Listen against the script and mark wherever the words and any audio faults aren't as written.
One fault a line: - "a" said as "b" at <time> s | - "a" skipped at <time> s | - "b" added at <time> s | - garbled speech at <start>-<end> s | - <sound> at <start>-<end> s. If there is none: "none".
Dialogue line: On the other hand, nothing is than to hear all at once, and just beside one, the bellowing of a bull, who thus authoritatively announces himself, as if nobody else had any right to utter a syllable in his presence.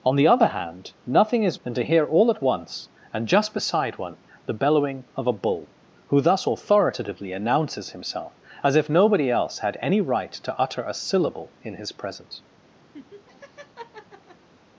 - laugh at 12.9-14.5 s